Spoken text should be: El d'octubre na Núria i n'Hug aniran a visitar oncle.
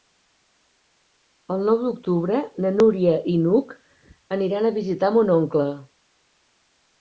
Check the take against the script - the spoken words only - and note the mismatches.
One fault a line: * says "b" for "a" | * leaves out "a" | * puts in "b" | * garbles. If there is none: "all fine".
* puts in "nou"
* puts in "mon"